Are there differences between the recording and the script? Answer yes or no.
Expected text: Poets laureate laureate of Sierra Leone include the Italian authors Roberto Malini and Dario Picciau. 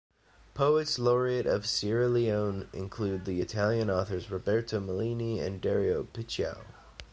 yes